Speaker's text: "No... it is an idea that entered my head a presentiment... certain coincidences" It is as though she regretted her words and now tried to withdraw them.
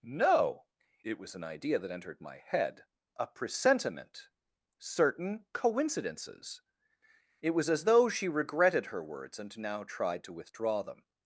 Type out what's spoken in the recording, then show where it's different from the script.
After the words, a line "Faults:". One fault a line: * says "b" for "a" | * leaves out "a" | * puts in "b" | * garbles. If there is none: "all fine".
"No... it was an idea that entered my head a presentiment... certain coincidences" It was as though she regretted her words and now tried to withdraw them.
Faults:
* says "was" for "is"
* says "was" for "is"